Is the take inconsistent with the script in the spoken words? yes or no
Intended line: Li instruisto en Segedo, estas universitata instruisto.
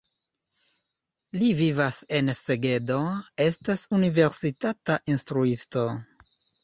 yes